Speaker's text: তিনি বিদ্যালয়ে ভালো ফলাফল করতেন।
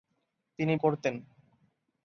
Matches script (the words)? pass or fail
fail